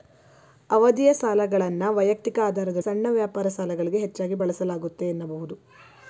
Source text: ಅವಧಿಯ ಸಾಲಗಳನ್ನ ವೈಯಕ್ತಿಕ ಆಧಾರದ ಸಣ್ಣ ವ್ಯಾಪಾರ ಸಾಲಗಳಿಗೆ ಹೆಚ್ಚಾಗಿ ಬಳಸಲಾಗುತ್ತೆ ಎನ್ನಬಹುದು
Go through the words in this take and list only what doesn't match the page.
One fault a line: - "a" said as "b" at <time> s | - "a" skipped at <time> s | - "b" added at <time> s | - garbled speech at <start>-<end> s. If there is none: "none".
none